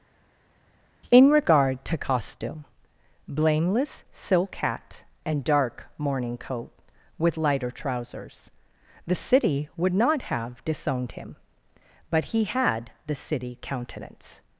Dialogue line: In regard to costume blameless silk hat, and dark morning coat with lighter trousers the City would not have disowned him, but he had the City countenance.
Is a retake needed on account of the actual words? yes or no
no